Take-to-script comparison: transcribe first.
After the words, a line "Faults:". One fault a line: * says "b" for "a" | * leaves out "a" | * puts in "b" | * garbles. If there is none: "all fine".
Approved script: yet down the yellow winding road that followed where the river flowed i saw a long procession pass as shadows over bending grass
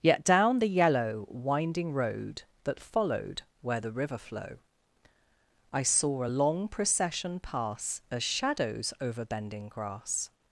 yet down the yellow winding road that followed where the river flow i saw a long procession pass as shadows over bending grass
Faults:
* says "flow" for "flowed"